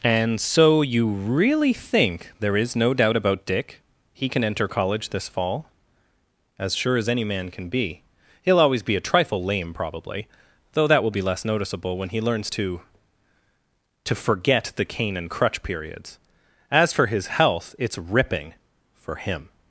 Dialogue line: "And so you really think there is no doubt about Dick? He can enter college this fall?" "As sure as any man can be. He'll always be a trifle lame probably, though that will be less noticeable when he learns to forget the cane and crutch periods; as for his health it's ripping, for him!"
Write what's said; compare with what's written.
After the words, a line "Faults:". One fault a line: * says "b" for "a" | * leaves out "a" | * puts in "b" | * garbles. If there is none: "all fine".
"And so you really think there is no doubt about Dick? He can enter college this fall?" "As sure as any man can be. He'll always be a trifle lame probably, though that will be less noticeable when he learns to to forget the cane and crutch periods; as for his health it's ripping, for him!"
Faults:
* puts in "to"